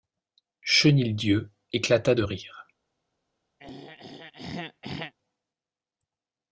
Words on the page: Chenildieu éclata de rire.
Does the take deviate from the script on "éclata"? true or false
false